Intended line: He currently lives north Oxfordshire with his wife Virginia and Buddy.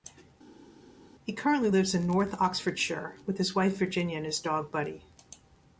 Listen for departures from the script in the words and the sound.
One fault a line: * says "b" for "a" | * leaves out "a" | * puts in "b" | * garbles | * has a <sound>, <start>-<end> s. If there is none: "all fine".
* puts in "in"
* puts in "his dog"